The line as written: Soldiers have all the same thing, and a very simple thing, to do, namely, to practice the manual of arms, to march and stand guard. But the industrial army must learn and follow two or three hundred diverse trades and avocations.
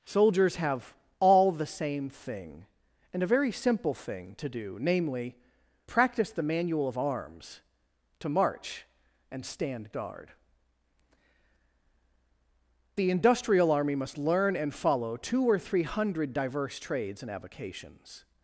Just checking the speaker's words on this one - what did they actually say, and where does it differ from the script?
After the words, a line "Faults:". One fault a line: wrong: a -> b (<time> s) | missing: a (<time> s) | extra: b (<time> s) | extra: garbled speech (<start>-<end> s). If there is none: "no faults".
Soldiers have all the same thing, and a very simple thing, to do, namely, practice the manual of arms, to march and stand guard. The industrial army must learn and follow two or three hundred diverse trades and avocations.
Faults:
missing: to (5.4 s)
missing: But (10.3 s)